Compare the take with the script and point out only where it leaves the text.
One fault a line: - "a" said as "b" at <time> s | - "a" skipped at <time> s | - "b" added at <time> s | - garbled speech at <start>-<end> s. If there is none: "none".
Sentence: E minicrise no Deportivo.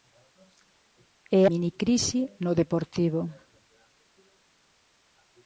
none